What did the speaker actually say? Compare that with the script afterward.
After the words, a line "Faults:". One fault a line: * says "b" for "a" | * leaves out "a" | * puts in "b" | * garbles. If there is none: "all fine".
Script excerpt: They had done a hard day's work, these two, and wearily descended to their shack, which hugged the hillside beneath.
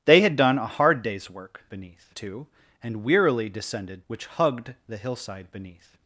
They had done a hard day's work, beneath two, and wearily descended which hugged the hillside beneath.
Faults:
* says "beneath" for "these"
* leaves out "to their shack"